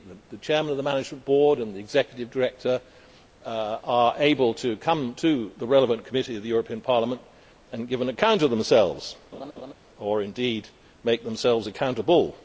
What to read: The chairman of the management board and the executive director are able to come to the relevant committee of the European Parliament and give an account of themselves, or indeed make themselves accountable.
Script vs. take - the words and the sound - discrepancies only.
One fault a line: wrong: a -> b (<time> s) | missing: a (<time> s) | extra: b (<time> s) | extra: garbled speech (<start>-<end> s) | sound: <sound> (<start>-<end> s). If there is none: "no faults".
sound: laugh (9.3-9.7 s)